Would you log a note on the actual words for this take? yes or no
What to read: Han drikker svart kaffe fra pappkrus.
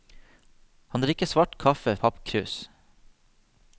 yes